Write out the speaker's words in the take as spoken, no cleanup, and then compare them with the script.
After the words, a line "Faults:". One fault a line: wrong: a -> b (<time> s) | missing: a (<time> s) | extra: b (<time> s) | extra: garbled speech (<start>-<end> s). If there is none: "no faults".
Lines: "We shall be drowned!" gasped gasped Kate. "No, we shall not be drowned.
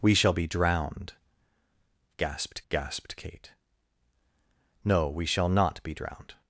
"We shall be drowned!" gasped gasped Kate. "No, we shall not be drowned.
Faults:
no faults